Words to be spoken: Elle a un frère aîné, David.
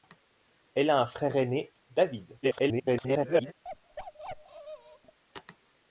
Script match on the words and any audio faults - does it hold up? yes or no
no